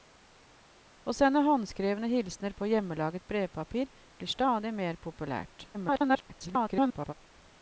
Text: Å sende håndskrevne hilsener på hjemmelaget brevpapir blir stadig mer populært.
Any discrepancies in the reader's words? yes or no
yes